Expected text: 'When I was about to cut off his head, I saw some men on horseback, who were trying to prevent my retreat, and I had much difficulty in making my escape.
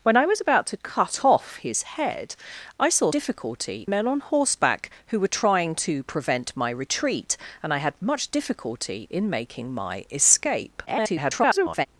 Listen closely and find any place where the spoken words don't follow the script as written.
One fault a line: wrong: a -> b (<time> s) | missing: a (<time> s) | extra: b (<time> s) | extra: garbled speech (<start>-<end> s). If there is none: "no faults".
wrong: some -> difficulty (3.1 s)
extra: garbled speech (10.9-11.9 s)